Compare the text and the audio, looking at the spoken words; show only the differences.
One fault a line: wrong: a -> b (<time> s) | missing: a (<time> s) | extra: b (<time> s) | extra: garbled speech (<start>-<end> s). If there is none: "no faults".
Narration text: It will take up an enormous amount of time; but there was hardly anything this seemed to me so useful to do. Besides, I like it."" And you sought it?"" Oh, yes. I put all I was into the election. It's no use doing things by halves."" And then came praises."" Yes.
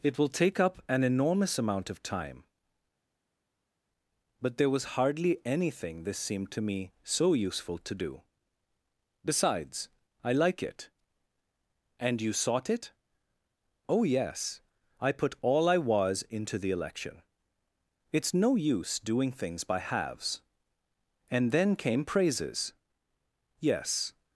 no faults